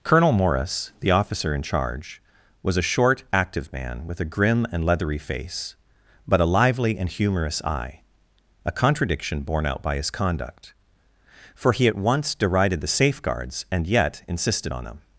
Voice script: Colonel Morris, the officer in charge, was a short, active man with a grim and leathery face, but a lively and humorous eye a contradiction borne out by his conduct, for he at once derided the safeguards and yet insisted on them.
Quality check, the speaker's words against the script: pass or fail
pass